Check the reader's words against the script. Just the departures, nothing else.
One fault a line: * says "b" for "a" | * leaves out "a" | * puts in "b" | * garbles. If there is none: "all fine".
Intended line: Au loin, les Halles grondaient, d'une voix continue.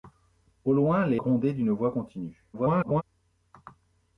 * leaves out "Halles"
* garbles